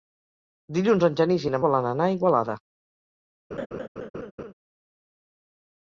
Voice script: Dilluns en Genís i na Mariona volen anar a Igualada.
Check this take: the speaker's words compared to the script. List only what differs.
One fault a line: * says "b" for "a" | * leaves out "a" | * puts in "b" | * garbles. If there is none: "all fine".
* leaves out "Mariona"